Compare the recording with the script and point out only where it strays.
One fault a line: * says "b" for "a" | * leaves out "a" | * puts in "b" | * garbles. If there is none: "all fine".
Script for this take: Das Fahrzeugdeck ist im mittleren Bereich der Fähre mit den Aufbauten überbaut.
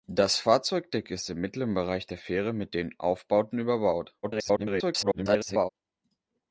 * garbles